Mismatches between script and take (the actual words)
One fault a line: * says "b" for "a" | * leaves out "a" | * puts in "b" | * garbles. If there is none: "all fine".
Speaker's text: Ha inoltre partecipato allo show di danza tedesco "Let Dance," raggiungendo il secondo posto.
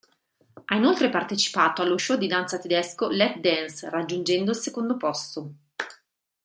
all fine